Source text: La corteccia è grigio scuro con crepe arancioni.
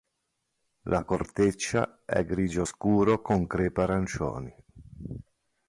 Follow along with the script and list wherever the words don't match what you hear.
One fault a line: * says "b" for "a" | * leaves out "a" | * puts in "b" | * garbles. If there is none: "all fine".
all fine